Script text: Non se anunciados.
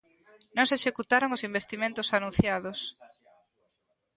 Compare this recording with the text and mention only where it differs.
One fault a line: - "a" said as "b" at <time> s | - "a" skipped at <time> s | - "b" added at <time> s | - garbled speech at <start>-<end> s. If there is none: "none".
- "executaron os investimentos" added at 0.8 s